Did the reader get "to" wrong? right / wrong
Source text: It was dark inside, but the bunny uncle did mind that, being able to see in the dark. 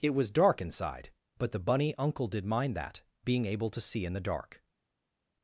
right